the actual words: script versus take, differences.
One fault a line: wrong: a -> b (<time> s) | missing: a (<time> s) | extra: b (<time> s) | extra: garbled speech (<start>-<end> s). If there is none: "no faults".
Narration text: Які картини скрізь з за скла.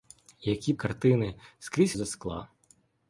no faults